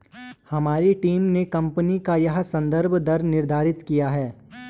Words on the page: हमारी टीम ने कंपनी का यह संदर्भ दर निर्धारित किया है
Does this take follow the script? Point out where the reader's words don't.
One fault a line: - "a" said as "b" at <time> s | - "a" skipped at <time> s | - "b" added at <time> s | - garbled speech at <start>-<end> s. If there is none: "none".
none